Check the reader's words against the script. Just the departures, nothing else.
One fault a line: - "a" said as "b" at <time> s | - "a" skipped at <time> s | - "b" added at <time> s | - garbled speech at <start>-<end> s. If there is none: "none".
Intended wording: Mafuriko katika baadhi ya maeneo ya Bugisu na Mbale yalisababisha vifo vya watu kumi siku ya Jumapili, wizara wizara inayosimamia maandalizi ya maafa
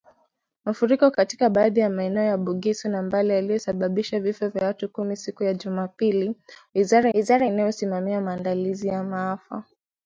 none